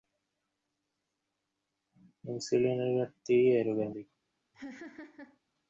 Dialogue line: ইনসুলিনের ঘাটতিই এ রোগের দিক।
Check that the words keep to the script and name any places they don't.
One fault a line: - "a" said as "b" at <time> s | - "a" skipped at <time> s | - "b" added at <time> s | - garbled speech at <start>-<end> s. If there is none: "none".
none